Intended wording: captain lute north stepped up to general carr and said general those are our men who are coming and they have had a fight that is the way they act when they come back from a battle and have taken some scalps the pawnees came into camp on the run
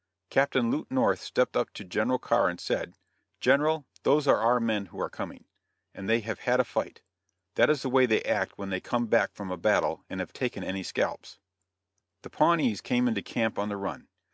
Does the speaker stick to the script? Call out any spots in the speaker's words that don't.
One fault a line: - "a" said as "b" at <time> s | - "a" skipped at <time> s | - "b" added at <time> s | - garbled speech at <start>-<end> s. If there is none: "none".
- "some" said as "any" at 10.6 s